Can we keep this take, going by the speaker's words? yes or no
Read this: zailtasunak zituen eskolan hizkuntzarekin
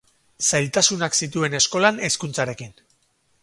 yes